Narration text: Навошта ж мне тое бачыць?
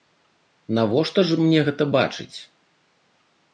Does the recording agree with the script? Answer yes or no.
no